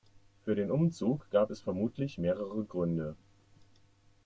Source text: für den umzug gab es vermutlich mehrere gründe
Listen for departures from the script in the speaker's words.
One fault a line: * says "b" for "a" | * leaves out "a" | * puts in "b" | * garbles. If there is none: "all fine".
all fine